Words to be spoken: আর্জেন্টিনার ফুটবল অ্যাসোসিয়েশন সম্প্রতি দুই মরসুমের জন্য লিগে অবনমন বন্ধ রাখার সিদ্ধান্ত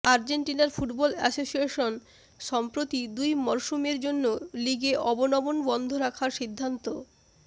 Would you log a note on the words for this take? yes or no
no